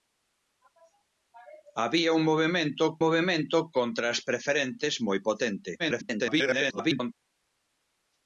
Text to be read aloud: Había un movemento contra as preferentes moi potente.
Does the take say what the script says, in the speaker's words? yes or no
no